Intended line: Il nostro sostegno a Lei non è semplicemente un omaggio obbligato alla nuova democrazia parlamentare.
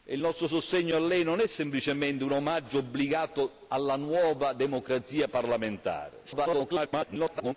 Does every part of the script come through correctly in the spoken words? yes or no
no